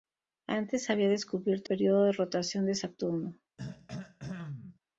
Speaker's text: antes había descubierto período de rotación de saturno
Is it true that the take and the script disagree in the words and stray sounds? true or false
true